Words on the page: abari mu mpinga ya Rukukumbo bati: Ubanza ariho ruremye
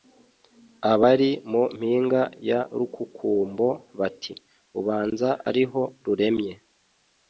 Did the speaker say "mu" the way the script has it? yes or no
yes